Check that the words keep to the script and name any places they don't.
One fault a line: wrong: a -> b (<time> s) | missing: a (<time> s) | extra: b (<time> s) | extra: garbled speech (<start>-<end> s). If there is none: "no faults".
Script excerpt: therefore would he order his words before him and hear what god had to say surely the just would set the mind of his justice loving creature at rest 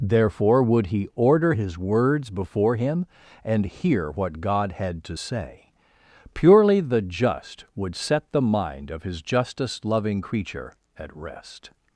wrong: surely -> purely (6.3 s)